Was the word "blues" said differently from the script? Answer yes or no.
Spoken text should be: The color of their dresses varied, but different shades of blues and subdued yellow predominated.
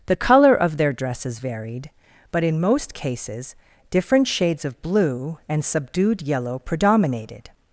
yes